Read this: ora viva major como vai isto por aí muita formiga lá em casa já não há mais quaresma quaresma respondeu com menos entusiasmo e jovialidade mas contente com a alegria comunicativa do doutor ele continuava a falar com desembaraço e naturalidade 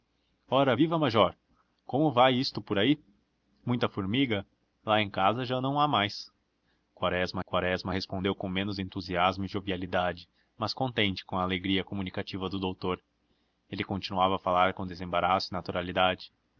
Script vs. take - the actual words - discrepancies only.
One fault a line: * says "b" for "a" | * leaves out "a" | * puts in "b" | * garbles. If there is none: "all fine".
all fine